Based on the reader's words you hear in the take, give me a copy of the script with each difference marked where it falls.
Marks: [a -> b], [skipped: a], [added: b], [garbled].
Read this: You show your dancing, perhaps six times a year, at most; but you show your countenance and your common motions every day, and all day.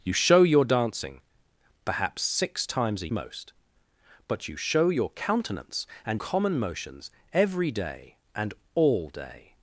You show your dancing, perhaps six times a [skipped: year, at] most; but you show your countenance and [skipped: your] common motions every day, and all day.